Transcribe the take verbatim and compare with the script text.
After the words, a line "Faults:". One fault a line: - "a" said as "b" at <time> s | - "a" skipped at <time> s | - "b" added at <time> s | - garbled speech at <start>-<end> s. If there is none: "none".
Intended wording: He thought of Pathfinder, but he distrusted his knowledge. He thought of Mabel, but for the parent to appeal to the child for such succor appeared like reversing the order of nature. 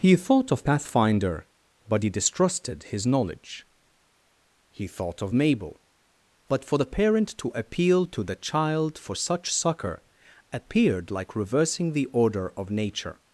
He thought of Pathfinder, but he distrusted his knowledge. He thought of Mabel, but for the parent to appeal to the child for such succor appeared like reversing the order of nature.
Faults:
none